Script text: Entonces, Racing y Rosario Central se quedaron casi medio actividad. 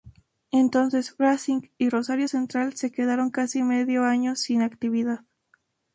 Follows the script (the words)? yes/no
no